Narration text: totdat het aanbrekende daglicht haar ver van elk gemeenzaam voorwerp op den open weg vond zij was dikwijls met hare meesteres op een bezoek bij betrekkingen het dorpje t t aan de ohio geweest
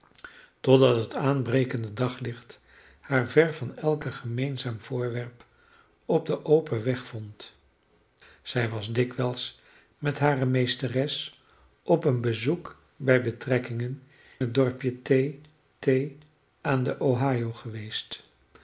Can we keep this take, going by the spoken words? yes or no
yes